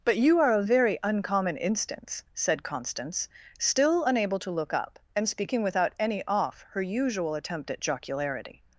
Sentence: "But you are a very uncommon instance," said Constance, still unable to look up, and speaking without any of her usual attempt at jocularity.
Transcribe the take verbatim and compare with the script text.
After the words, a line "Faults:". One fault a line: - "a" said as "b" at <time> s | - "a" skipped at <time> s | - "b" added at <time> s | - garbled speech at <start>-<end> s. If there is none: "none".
"But you are a very uncommon instance," said Constance, still unable to look up, and speaking without any off her usual attempt at jocularity.
Faults:
- "of" said as "off" at 6.3 s